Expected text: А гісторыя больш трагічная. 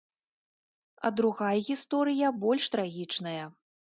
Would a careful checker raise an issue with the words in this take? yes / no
yes